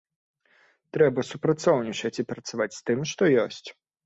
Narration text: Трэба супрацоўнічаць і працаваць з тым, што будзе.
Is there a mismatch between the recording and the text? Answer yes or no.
yes